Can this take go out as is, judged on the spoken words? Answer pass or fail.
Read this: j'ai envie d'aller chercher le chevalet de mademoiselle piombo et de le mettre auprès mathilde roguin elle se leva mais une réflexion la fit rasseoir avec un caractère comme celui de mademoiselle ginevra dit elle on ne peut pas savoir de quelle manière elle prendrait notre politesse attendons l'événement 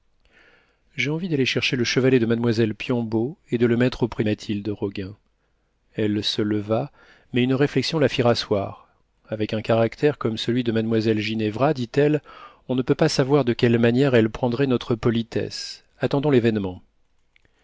pass